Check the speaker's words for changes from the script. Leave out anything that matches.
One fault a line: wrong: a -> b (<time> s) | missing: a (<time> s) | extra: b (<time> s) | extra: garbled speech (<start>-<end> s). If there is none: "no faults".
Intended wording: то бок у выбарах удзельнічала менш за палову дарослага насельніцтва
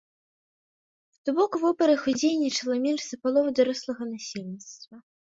no faults